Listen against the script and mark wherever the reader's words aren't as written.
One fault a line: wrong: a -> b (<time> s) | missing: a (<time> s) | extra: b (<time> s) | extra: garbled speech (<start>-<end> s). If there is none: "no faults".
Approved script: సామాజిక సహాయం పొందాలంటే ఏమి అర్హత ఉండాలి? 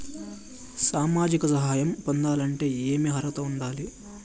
no faults